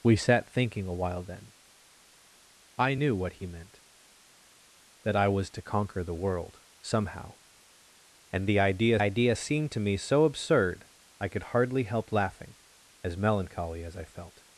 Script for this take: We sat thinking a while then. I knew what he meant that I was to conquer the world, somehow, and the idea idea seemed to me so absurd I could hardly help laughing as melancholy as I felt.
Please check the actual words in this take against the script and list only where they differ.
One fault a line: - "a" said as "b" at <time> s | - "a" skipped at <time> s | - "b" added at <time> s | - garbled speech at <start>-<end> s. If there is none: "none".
none